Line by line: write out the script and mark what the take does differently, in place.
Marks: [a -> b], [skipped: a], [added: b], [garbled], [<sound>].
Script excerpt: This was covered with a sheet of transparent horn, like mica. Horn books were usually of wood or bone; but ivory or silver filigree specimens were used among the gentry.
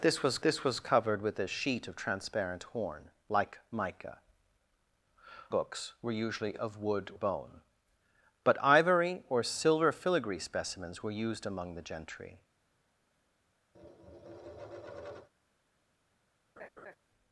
This was [added: this was] covered with a sheet of transparent horn, like mica. [skipped: Horn] books were usually of wood [skipped: or] bone; but ivory or silver filigree specimens were used among the gentry. [tap] [laugh]